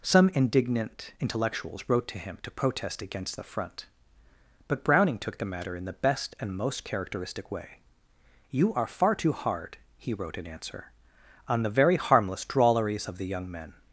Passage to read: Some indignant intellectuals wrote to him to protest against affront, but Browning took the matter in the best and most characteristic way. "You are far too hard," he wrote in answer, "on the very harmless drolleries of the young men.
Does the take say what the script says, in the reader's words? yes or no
yes